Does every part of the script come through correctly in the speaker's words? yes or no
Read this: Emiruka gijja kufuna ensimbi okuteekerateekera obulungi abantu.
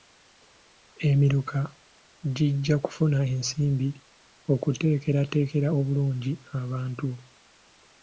yes